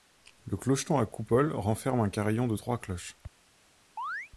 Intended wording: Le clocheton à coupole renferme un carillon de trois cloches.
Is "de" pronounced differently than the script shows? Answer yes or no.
no